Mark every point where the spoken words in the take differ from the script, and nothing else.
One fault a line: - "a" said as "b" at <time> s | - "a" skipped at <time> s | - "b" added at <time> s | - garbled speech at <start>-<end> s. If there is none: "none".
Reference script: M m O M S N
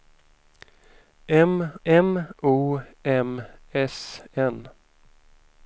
none